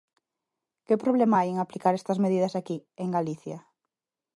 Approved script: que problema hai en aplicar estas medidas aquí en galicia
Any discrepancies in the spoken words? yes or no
no